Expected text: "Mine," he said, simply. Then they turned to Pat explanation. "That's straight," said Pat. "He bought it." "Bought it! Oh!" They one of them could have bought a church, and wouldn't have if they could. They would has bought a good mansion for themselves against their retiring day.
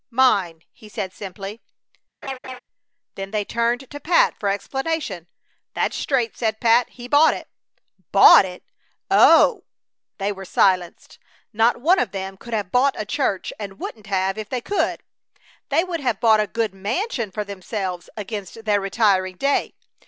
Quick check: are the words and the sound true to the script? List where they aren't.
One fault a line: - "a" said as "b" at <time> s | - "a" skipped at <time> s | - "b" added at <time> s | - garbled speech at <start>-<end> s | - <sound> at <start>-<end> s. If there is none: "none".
- laugh at 2.2-2.6 s
- "for" added at 4.4 s
- "were silenced Not" added at 10.3 s
- "has" said as "have" at 16.0 s